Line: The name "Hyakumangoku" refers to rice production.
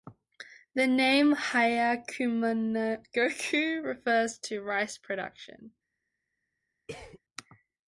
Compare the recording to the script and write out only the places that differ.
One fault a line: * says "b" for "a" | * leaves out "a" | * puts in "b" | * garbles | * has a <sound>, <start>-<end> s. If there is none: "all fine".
* has a cough, 6.9-7.2 s